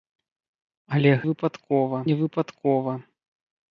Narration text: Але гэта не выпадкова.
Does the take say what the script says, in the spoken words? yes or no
no